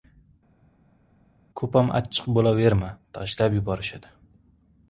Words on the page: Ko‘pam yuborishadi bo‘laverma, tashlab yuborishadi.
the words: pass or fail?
fail